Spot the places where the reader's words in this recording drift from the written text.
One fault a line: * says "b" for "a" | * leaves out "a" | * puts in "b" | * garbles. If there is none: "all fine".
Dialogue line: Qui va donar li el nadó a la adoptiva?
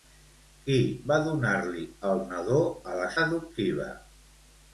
all fine